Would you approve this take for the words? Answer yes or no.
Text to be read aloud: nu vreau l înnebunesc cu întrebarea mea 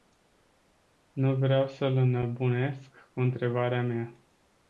no